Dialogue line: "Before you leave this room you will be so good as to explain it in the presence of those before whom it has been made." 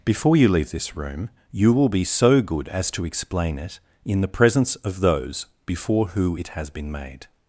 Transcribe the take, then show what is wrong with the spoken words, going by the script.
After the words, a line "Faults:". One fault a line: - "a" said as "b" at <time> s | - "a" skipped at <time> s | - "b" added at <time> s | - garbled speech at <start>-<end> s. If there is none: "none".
"Before you leave this room you will be so good as to explain it in the presence of those before who it has been made."
Faults:
- "whom" said as "who" at 6.1 s